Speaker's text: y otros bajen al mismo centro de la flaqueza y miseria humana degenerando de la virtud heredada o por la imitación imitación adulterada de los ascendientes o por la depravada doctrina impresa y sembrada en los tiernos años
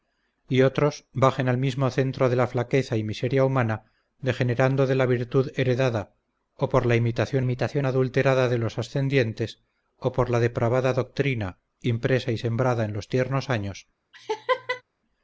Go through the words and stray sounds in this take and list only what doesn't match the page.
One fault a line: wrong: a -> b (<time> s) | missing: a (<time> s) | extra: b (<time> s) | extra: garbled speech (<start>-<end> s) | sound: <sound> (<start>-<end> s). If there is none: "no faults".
sound: laugh (14.1-14.8 s)